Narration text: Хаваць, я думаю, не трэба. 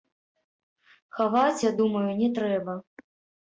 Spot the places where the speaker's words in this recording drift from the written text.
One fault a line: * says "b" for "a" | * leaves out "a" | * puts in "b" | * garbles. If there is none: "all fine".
all fine